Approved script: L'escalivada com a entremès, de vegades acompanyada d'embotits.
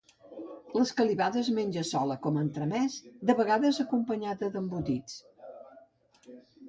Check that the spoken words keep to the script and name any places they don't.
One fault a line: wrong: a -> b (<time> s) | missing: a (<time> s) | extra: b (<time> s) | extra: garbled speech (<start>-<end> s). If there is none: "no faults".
extra: es menja sola (1.4 s)